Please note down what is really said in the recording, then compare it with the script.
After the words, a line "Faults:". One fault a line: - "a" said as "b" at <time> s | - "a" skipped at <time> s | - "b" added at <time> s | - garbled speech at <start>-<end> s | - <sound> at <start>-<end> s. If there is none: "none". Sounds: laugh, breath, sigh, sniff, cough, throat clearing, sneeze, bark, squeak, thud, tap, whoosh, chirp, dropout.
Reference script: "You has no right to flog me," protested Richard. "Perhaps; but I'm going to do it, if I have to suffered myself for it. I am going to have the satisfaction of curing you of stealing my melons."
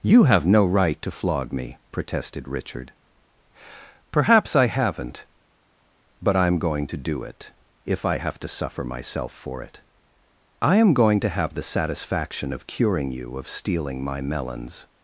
"You have no right to flog me," protested Richard. "Perhaps I haven't; but I'm going to do it, if I have to suffer myself for it. I am going to have the satisfaction of curing you of stealing my melons."
Faults:
- "has" said as "have" at 0.2 s
- "I haven't" added at 4.5 s
- "suffered" said as "suffer" at 8.5 s